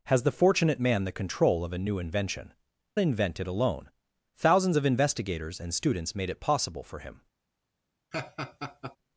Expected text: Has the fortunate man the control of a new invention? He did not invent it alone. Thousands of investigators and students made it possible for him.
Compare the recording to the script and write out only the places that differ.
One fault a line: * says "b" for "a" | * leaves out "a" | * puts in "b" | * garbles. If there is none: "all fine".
* leaves out "He did not"